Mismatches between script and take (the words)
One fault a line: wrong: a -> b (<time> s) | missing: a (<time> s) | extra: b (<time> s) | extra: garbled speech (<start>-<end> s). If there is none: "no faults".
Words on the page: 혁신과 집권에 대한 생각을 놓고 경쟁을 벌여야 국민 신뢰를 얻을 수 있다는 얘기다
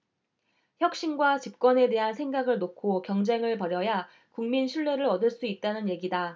no faults